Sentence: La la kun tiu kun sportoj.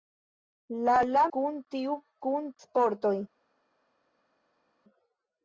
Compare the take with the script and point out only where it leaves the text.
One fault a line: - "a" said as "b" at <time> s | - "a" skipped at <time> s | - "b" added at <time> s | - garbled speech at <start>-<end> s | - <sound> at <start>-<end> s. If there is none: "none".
none